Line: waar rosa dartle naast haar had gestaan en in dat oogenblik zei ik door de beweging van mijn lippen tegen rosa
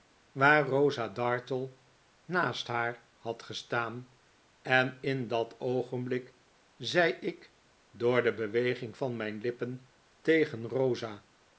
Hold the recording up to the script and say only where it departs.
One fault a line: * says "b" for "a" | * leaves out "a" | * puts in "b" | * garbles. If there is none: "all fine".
all fine